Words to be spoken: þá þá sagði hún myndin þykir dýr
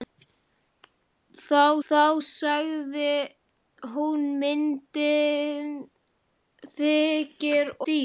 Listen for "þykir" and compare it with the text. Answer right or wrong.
right